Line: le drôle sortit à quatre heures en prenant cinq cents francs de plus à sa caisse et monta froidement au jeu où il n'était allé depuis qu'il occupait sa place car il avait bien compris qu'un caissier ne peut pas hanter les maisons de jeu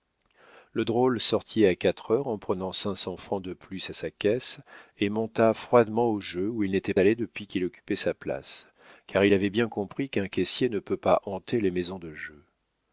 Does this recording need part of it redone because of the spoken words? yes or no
no